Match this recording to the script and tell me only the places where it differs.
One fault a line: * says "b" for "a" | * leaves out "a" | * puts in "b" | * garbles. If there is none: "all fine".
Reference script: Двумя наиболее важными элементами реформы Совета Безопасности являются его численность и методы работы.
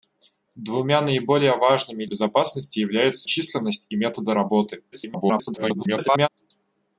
* leaves out "элементами реформы Совета"
* leaves out "его"
* garbles